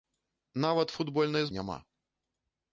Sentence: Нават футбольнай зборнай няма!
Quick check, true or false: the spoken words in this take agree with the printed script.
false